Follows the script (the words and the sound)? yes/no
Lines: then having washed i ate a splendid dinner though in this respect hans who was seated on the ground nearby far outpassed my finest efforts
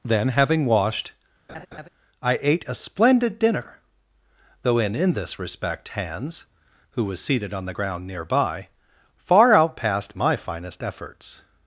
no